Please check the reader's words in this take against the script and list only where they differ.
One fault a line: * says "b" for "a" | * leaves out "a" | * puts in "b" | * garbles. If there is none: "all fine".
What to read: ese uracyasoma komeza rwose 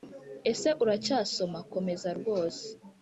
all fine